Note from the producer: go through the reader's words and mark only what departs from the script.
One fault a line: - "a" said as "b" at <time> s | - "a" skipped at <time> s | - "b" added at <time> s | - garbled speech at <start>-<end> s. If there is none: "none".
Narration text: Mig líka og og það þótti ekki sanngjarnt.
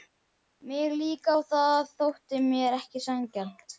- "og" skipped at 1.5 s
- "mér" added at 2.5 s